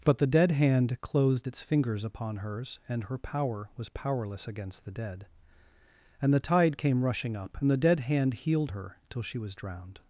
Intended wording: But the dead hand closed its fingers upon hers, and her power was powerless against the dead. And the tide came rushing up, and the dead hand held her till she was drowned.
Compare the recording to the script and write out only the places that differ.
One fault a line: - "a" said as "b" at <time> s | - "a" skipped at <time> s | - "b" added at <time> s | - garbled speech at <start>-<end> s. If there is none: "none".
- "held" said as "healed" at 8.3 s